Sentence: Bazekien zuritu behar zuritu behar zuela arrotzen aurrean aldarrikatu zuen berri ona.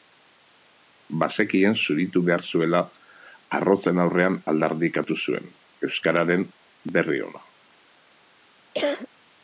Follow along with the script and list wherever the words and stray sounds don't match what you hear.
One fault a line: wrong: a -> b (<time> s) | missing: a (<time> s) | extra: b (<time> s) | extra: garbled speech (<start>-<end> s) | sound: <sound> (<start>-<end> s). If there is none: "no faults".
missing: zuritu behar (2.5 s)
extra: euskararen (5.9 s)
sound: cough (8.7-9.1 s)